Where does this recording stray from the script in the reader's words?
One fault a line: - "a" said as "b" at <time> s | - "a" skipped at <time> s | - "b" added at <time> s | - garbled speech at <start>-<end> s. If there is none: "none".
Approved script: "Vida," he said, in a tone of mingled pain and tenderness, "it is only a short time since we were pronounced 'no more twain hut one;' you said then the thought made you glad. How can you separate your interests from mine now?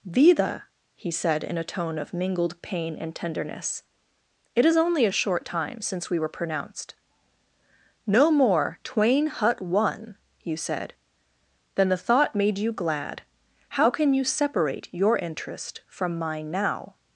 - "interests" said as "interest" at 15.2 s